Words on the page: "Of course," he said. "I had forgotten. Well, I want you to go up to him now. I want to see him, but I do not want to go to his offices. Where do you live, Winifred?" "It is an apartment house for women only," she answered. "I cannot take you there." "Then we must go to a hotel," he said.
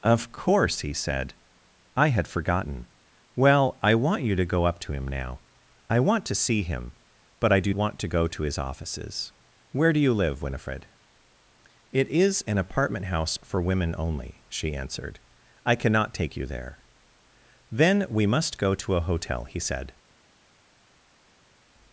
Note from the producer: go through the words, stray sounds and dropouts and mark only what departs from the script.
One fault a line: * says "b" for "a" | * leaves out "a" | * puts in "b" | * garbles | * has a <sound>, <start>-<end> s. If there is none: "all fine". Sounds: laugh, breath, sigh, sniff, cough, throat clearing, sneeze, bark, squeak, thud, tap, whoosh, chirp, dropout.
* leaves out "not"